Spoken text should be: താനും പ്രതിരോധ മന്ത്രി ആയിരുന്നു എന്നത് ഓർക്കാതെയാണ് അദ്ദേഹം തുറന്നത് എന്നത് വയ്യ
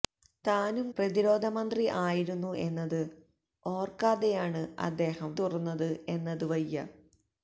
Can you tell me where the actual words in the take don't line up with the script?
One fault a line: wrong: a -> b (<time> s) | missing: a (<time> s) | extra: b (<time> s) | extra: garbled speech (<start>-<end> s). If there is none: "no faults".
no faults